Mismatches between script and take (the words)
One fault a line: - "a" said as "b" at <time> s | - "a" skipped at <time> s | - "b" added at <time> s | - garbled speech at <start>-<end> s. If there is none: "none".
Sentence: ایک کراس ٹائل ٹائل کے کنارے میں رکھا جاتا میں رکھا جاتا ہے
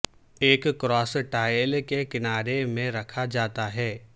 - "ٹائل" skipped at 1.8 s
- "میں رکھا جاتا" skipped at 3.7 s